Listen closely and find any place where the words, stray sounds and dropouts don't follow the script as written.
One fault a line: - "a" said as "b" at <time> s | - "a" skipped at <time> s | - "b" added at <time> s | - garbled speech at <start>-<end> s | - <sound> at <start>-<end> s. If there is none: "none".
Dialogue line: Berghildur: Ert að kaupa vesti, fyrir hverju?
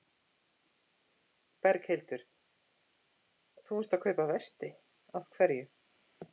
- "Þú" added at 3.7 s
- "fyrir" said as "af" at 5.2 s